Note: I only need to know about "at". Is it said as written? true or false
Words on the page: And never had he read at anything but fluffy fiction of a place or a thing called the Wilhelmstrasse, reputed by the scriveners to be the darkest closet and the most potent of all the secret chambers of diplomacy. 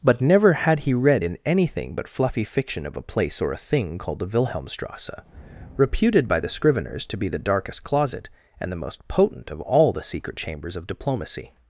false